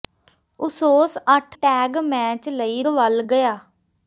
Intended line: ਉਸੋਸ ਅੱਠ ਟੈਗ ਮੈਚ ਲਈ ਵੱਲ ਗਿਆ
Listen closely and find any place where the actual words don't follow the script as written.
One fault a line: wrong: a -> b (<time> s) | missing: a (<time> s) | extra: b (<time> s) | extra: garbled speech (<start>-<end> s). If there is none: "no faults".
no faults